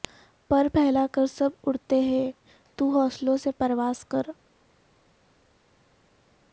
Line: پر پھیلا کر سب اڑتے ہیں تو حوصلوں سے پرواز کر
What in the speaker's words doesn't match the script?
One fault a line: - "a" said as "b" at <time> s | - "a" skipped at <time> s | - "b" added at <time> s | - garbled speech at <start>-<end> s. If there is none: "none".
none